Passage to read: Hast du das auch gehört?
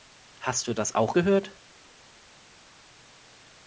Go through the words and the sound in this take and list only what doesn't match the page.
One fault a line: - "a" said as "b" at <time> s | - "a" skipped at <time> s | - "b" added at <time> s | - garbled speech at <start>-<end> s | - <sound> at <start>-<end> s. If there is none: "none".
none